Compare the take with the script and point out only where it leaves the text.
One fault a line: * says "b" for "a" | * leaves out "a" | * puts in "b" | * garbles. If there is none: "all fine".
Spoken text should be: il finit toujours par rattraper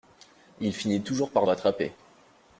all fine